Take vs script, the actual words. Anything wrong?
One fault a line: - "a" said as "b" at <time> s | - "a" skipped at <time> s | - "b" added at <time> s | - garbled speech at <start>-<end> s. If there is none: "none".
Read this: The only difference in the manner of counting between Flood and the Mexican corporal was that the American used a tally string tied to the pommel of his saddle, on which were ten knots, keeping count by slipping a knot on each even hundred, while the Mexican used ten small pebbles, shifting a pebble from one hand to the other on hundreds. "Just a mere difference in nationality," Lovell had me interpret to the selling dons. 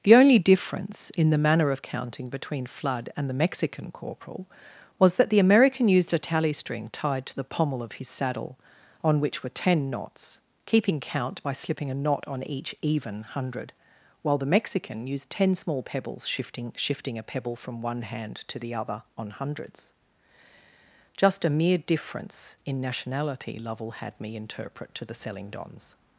- "shifting" added at 16.8 s